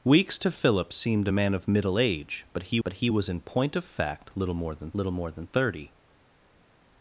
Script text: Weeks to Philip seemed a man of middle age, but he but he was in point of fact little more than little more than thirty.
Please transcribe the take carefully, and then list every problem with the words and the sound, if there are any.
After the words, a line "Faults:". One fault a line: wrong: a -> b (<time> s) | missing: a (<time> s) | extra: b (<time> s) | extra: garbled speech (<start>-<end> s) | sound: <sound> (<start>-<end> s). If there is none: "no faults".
Weeks to Philip seemed a man of middle age, but he but he was in point of fact little more than little more than thirty.
Faults:
no faults